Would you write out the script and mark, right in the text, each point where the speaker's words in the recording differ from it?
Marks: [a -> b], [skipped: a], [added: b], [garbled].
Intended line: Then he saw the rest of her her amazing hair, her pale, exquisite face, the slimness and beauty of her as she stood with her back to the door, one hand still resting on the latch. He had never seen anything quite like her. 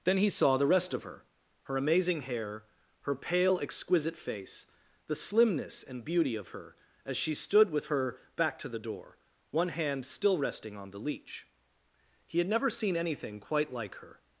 Then he saw the rest of her her amazing hair, her pale, exquisite face, the slimness and beauty of her as she stood with her back to the door, one hand still resting on the [latch. -> leech] He had never seen anything quite like her.